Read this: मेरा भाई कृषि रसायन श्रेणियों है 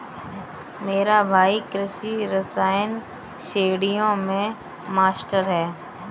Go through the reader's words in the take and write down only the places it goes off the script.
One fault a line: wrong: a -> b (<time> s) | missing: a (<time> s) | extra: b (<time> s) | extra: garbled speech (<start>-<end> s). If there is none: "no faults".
extra: में मास्टर (4.2 s)